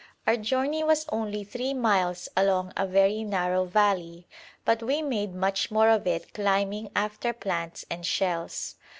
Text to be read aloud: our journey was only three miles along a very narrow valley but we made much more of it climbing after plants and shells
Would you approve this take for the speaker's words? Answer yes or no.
yes